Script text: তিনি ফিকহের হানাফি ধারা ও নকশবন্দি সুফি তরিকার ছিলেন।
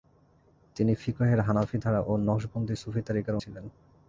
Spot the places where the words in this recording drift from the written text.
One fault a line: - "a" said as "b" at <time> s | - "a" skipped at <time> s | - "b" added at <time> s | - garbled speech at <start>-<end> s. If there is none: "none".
none